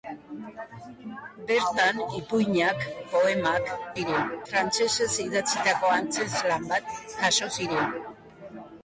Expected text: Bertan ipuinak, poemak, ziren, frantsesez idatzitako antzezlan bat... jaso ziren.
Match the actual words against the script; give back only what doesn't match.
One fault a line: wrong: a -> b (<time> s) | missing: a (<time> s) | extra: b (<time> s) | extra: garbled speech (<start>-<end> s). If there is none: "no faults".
no faults